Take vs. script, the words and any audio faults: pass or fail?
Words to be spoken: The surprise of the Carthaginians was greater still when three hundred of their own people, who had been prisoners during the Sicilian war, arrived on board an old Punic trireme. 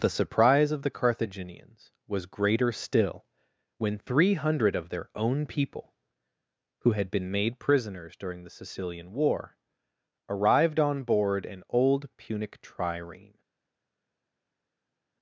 fail